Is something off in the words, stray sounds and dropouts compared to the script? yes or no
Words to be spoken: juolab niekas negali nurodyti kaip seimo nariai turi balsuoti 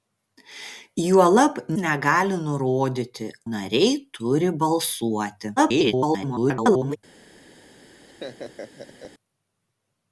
yes